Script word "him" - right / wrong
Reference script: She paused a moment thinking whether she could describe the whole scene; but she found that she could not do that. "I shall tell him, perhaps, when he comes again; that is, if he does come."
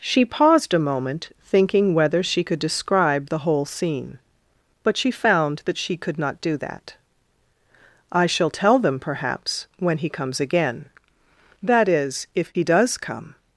wrong